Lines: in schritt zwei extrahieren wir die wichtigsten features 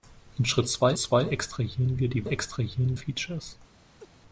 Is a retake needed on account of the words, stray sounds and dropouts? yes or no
yes